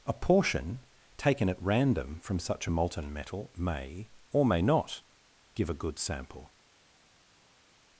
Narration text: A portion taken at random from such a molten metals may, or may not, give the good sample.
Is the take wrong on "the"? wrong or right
wrong